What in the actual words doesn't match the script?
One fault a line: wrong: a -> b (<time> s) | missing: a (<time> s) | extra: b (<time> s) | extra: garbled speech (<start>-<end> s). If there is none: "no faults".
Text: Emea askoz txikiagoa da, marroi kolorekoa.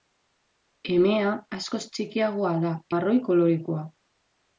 no faults